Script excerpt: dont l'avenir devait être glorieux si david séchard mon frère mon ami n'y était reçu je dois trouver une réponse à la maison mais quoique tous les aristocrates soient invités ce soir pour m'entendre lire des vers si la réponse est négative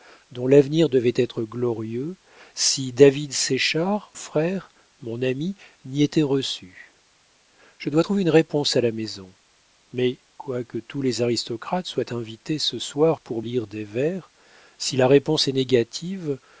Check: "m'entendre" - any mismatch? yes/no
yes